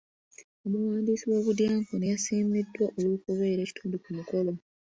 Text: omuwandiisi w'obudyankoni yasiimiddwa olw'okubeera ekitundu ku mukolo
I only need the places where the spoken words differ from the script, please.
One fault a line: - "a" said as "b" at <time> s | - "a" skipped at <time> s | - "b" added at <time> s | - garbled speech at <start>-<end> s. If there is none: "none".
none